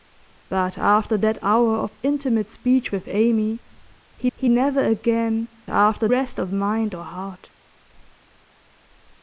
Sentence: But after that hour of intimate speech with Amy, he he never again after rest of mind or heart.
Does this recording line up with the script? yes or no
yes